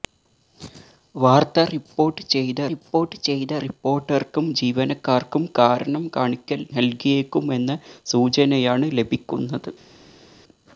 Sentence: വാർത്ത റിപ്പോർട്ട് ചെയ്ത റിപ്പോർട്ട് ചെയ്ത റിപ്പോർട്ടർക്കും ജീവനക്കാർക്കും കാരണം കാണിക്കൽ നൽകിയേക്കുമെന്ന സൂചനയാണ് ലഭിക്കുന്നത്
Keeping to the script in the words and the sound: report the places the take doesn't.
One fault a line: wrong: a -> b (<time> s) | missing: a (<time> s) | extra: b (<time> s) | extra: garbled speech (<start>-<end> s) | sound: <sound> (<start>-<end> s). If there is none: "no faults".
no faults